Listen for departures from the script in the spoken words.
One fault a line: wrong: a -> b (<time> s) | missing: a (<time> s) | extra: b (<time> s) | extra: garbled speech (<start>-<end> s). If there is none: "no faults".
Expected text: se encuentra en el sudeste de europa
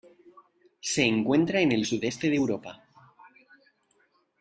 no faults